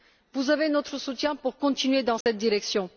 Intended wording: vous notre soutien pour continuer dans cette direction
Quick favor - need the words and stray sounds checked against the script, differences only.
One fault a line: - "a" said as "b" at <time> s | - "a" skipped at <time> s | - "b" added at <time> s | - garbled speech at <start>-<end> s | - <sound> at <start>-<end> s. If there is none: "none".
- "avez" added at 0.5 s
- dropout at 2.2-2.3 s